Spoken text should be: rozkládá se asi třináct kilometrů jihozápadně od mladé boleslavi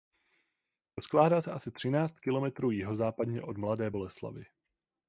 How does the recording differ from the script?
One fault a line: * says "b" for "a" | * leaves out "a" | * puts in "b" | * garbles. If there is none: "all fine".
all fine